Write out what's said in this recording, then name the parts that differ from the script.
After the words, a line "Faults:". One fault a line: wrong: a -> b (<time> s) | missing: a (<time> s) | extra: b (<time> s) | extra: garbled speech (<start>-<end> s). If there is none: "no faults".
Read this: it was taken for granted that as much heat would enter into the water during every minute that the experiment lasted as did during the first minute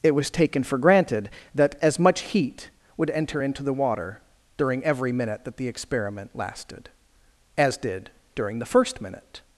it was taken for granted that as much heat would enter into the water during every minute that the experiment lasted as did during the first minute
Faults:
no faults